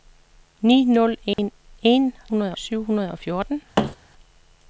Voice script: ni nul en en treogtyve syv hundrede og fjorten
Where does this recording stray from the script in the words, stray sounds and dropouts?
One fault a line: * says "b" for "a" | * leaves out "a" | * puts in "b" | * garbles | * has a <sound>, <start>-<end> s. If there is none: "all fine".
* has a dropout, 1.3-1.4 s
* says "hundrede" for "treogtyve"
* has a thud, 3.8-4.0 s